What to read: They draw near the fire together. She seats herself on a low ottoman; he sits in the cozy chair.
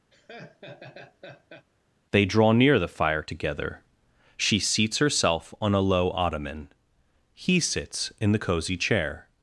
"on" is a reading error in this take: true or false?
false